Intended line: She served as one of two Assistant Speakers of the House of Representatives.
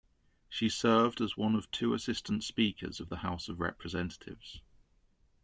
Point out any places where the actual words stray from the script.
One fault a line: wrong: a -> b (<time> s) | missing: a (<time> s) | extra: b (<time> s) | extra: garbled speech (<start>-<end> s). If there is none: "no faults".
no faults